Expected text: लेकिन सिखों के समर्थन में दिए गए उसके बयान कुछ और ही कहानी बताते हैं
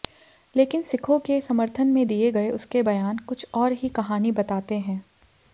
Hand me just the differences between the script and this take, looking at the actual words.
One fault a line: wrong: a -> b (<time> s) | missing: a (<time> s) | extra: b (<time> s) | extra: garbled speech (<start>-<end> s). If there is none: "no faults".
no faults